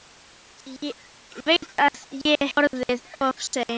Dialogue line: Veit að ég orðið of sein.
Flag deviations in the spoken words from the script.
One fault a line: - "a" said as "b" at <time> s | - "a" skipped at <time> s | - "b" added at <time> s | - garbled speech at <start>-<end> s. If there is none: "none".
none